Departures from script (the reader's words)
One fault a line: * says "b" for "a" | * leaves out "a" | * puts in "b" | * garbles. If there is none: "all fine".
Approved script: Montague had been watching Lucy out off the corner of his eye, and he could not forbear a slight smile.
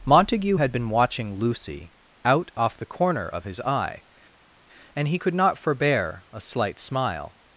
all fine